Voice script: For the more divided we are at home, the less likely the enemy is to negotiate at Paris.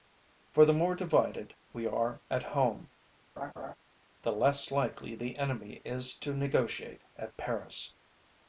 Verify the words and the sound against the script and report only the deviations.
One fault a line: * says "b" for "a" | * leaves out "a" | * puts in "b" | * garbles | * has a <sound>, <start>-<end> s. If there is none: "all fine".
* has a laugh, 3.4-3.7 s